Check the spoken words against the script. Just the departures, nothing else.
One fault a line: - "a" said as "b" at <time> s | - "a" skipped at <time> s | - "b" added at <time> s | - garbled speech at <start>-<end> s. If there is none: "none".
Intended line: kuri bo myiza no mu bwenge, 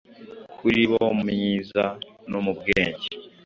none